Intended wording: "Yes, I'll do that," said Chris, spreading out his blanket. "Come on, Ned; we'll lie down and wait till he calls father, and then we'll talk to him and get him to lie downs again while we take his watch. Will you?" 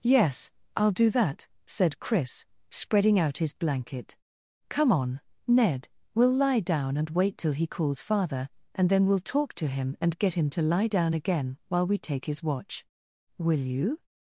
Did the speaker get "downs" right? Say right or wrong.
wrong